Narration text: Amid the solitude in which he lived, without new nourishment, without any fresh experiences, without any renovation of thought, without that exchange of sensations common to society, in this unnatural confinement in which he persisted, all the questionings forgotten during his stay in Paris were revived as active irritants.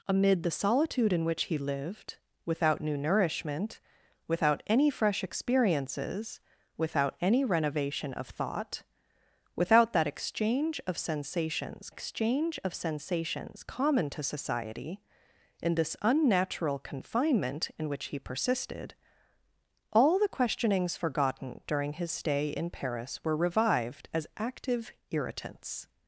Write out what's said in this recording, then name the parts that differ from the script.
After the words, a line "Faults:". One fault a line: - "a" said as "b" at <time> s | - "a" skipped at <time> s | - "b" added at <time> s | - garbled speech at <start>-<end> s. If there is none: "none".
Amid the solitude in which he lived, without new nourishment, without any fresh experiences, without any renovation of thought, without that exchange of sensations exchange of sensations common to society, in this unnatural confinement in which he persisted, all the questionings forgotten during his stay in Paris were revived as active irritants.
Faults:
- "exchange of sensations" added at 11.9 s